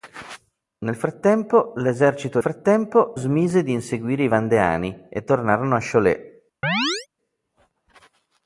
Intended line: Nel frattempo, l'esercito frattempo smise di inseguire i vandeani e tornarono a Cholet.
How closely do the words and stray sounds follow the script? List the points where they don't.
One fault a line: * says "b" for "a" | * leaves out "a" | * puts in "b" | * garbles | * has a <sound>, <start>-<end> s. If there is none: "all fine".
* has a chirp, 6.6-7.1 s